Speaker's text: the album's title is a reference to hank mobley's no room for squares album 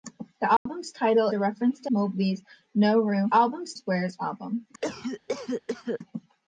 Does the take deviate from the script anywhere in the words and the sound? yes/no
yes